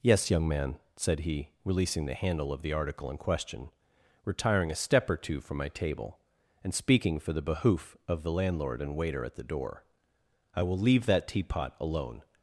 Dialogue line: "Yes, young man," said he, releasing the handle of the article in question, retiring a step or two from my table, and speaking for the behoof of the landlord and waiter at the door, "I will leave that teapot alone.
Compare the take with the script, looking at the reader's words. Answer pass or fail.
pass